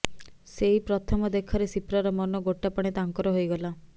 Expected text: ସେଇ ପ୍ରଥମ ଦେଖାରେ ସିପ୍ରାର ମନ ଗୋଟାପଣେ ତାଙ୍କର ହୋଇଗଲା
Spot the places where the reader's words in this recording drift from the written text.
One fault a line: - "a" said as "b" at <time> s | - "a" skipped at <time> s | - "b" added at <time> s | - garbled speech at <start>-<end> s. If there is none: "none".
none